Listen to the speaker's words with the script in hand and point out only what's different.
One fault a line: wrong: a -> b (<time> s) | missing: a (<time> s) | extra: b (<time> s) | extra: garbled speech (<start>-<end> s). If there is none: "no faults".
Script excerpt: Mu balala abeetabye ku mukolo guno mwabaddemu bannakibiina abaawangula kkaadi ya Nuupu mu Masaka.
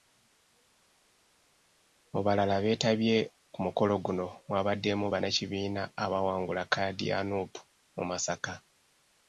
no faults